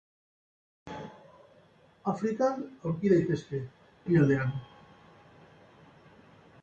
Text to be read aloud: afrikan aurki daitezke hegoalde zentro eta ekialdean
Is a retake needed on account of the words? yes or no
yes